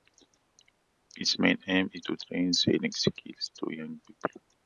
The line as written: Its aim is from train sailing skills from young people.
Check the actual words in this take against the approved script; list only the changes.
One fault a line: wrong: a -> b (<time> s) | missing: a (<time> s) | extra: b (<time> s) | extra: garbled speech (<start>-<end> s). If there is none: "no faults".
extra: main (1.4 s)
wrong: from -> to (2.0 s)
wrong: from -> to (3.6 s)